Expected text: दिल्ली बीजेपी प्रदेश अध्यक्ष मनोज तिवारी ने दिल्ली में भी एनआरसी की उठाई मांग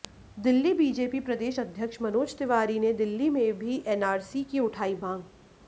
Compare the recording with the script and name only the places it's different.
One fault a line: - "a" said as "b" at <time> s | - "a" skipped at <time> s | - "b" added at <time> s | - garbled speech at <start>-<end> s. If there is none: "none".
none